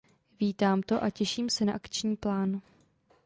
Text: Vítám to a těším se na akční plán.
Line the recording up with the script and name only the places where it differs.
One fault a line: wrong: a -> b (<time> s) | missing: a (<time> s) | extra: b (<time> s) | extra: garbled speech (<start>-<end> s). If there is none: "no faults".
no faults